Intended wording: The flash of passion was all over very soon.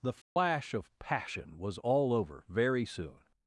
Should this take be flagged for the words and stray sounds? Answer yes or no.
yes